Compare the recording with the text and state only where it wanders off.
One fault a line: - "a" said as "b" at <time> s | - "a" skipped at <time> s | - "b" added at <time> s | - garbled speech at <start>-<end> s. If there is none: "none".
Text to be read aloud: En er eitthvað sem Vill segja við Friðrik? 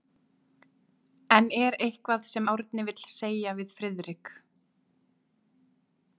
- "Árni" added at 2.5 s